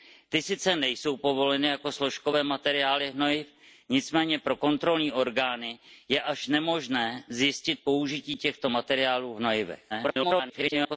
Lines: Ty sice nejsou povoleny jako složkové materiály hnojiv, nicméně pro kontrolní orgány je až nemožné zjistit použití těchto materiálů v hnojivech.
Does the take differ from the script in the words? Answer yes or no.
yes